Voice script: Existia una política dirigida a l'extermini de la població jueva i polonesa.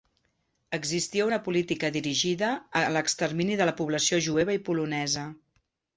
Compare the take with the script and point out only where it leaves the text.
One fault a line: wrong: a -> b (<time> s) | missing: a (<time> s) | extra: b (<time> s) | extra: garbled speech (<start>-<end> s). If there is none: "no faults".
no faults